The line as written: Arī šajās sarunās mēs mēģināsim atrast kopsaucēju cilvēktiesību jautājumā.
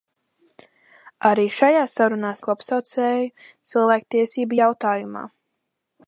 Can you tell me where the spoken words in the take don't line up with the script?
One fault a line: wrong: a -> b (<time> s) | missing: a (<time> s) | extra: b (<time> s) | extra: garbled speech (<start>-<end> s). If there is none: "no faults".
missing: mēs mēģināsim atrast (2.4 s)